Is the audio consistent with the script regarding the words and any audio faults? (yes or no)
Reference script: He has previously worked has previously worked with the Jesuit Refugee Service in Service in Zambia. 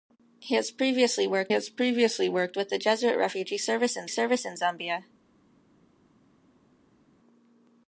yes